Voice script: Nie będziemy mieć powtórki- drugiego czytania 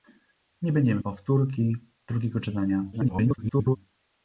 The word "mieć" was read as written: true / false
false